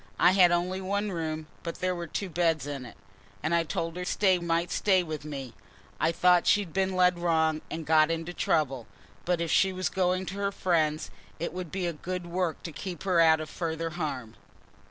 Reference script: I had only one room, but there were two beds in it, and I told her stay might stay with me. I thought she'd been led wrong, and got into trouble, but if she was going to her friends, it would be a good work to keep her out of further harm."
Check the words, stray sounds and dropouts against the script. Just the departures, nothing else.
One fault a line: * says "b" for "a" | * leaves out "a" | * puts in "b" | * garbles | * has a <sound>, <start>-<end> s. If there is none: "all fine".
all fine